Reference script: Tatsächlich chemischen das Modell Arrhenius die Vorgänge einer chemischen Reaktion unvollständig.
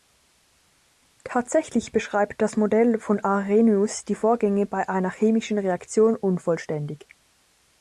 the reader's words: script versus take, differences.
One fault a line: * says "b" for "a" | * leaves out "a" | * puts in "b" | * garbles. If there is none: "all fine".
* says "beschreibt" for "chemischen"
* puts in "von"
* puts in "bei"